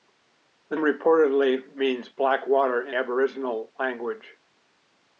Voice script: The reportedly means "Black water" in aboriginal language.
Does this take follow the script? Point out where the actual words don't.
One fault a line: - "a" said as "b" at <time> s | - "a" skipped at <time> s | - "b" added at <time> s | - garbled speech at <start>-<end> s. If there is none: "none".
none